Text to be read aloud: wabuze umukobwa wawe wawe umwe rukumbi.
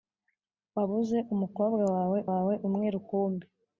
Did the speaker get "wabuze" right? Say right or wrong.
right